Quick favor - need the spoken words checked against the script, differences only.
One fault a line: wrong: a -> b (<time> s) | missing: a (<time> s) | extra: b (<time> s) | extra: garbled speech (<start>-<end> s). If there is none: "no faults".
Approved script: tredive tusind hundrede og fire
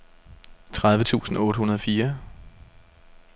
extra: otte (1.4 s)